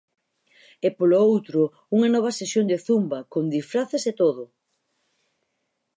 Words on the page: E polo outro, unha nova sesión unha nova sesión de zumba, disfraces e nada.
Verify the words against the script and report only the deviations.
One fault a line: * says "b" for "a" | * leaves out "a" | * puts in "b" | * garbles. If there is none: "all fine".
* leaves out "unha nova sesión"
* puts in "con"
* says "todo" for "nada"